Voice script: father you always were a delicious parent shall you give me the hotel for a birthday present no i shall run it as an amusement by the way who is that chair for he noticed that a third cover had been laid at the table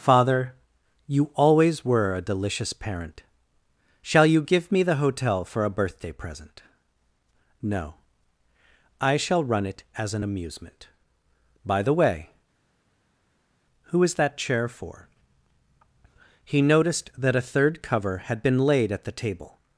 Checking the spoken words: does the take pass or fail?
pass